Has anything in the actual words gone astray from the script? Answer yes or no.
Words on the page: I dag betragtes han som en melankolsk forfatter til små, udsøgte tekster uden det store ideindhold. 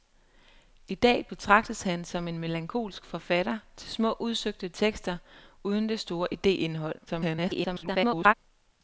yes